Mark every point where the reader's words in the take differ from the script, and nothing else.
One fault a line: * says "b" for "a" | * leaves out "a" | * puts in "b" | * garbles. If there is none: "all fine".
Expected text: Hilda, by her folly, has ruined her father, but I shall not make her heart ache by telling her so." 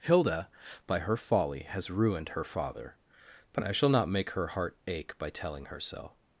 all fine